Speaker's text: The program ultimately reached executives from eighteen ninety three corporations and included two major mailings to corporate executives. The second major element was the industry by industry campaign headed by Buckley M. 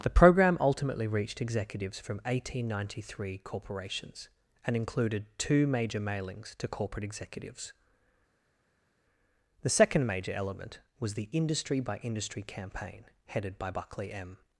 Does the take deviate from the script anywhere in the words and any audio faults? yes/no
no